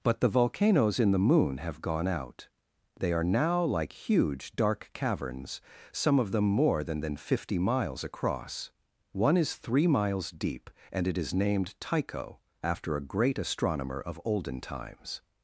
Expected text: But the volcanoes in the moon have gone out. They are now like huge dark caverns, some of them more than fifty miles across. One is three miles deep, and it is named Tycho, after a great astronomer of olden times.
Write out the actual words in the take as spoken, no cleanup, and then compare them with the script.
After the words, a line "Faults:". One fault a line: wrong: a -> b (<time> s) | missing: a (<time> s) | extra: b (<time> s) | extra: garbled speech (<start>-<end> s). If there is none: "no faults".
But the volcanoes in the moon have gone out. They are now like huge dark caverns, some of them more than than fifty miles across. One is three miles deep, and it is named Tycho, after a great astronomer of olden times.
Faults:
extra: than (7.0 s)